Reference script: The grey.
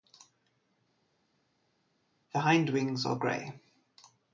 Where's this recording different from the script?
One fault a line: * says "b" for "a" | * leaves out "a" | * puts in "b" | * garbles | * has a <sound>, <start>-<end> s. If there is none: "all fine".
* puts in "hindwings are"